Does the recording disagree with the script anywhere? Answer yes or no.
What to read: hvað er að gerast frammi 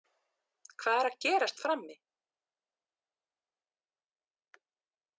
no